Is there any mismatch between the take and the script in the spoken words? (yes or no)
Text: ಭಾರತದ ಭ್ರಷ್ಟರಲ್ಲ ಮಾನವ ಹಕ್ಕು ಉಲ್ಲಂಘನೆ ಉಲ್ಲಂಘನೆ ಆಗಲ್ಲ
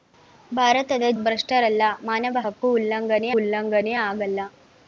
no